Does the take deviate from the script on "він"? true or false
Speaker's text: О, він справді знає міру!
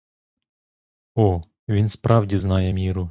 false